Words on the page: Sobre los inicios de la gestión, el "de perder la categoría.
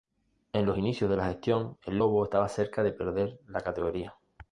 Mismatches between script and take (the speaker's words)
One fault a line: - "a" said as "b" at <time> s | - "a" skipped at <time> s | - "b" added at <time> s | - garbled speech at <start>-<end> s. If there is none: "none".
- "Sobre" said as "En" at 0.5 s
- "lobo estaba cerca" added at 1.9 s